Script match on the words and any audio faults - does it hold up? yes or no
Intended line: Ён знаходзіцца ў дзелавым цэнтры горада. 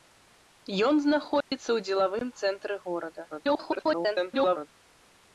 no